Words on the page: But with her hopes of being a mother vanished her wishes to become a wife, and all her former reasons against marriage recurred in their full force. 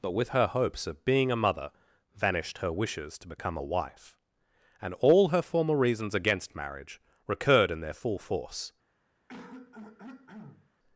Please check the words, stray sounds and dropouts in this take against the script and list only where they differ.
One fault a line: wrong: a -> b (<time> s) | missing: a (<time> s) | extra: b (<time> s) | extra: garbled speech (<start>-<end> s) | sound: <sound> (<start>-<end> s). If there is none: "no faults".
sound: throat clearing (9.3-10.7 s)